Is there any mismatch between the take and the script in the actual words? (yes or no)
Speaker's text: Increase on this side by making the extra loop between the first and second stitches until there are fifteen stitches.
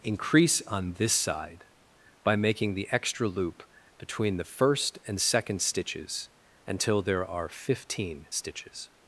no